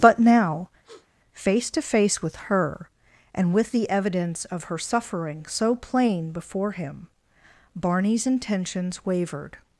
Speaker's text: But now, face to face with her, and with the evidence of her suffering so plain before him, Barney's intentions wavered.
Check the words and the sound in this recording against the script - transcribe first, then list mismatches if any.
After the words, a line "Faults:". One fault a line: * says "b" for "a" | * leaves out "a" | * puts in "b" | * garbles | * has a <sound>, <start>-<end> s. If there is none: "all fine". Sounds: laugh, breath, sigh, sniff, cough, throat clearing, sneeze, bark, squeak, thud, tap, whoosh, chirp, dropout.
But now, face to face with her, and with the evidence of her suffering so plain before him, Barney's intentions wavered.
Faults:
* has a sniff, 0.8-1.1 s